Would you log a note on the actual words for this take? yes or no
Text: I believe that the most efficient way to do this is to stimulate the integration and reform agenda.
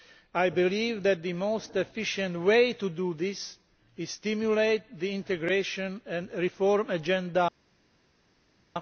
no